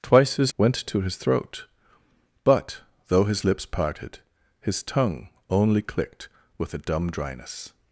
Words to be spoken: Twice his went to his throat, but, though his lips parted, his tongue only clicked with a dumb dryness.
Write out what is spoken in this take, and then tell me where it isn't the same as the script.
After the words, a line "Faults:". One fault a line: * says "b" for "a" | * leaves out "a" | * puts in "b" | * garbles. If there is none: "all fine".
Twice his went to his throat, but, though his lips parted, his tongue only clicked with a dumb dryness.
Faults:
all fine